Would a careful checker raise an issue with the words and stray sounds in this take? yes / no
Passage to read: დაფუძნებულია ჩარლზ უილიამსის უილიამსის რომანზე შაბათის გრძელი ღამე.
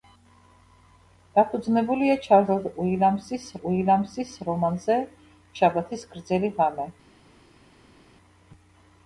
no